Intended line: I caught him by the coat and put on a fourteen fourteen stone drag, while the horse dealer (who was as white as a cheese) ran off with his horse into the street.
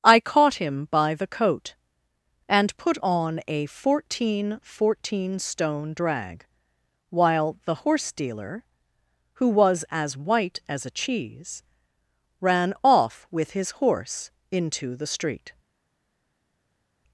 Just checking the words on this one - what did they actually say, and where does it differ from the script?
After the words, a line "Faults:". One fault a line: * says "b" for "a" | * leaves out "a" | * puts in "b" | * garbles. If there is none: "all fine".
I caught him by the coat and put on a fourteen fourteen stone drag, while the horse dealer (who was as white as a cheese) ran off with his horse into the street.
Faults:
all fine